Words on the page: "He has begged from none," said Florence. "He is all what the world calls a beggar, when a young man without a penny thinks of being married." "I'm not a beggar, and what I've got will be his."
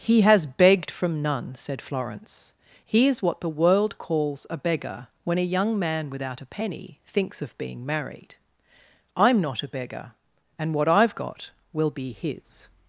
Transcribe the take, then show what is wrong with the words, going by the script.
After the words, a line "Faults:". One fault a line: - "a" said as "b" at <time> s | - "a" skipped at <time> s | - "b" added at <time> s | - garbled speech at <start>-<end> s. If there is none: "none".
"He has begged from none," said Florence. "He is what the world calls a beggar, when a young man without a penny thinks of being married." "I'm not a beggar, and what I've got will be his."
Faults:
- "all" skipped at 3.2 s